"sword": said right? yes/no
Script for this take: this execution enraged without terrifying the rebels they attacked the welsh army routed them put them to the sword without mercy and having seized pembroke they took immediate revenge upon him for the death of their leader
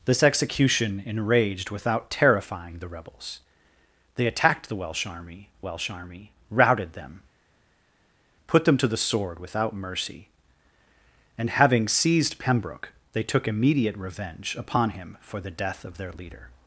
yes